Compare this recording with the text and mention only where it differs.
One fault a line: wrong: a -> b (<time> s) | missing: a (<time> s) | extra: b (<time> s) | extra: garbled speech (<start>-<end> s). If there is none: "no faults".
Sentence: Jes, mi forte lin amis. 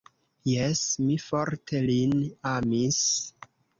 no faults